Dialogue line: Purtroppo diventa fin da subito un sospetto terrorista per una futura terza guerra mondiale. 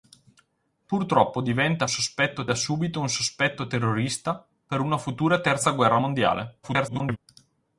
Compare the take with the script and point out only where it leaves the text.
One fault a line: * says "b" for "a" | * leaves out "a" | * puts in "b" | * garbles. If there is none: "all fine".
* says "sospetto" for "fin"
* garbles